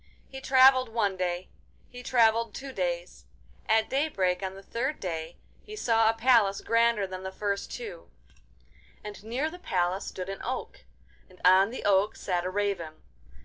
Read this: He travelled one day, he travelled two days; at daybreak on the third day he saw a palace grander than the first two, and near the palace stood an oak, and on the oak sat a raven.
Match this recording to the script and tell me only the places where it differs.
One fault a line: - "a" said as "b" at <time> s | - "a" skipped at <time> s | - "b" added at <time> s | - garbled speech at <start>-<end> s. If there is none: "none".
none